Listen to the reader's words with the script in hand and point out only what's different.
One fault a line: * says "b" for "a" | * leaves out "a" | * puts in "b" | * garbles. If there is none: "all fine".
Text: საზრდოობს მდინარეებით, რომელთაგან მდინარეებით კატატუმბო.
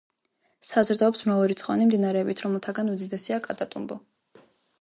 * puts in "მრავალრიცხოვანი"
* says "უდიდესია" for "მდინარეებით"